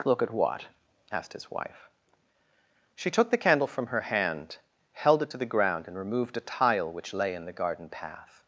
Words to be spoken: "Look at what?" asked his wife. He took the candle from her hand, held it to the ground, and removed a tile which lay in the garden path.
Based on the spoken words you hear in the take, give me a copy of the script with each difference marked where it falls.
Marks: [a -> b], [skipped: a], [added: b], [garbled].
"Look at what?" asked his wife. [He -> She] took the candle from her hand, held it to the ground, and removed a tile which lay in the garden path.